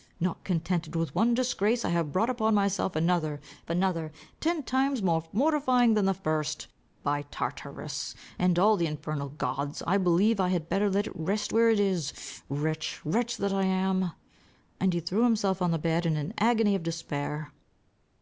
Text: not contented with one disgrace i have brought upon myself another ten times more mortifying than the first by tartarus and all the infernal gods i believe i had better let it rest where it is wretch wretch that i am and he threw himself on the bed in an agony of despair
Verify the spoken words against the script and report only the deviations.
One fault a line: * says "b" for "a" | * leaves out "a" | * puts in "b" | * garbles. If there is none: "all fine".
* puts in "another"